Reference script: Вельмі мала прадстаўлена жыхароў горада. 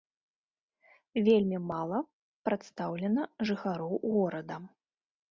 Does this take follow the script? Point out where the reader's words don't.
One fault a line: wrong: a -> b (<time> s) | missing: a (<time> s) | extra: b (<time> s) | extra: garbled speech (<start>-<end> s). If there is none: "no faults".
no faults